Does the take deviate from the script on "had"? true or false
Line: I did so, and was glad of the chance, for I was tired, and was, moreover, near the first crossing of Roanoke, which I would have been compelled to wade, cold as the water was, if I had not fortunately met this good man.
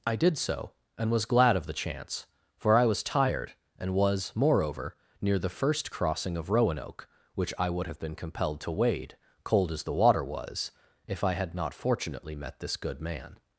false